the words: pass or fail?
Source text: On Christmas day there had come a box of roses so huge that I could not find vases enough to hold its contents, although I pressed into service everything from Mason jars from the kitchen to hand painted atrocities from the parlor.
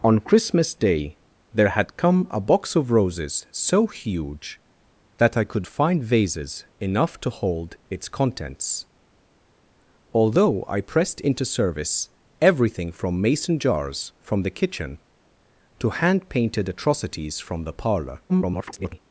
fail